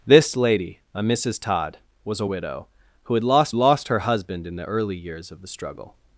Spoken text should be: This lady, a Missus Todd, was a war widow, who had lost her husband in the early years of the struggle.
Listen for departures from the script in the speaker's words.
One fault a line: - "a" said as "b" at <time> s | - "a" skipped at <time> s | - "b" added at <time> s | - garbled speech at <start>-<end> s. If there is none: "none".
- "war" skipped at 2.2 s
- "lost" added at 3.6 s